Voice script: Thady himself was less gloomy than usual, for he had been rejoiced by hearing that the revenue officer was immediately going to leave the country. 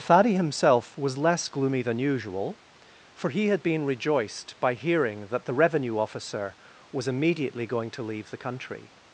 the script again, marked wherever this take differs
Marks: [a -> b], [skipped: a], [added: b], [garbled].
Thady himself was less gloomy than usual, for he had been rejoiced by hearing that the revenue officer was immediately going to leave the country.